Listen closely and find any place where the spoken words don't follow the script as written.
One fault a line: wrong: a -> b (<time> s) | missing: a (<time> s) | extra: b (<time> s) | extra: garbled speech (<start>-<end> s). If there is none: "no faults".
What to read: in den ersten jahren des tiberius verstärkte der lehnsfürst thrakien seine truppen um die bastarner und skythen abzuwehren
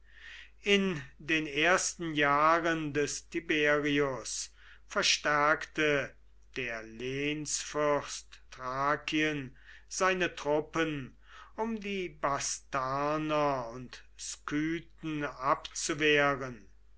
no faults